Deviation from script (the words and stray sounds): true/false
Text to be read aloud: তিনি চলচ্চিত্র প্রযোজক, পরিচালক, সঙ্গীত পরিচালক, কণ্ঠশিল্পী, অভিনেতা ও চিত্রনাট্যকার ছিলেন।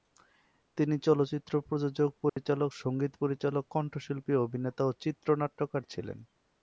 true